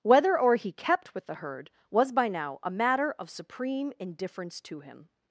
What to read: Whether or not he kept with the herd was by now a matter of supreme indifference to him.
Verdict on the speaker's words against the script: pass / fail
fail